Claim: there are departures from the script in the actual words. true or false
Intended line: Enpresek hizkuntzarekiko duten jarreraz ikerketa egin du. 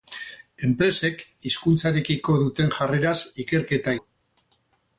true